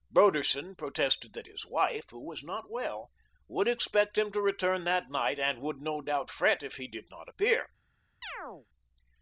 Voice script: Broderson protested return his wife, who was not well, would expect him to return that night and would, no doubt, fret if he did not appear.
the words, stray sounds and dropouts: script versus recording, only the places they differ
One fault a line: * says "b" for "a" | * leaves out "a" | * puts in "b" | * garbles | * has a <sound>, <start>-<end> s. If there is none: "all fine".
* says "that" for "return"
* has a chirp, 8.2-8.7 s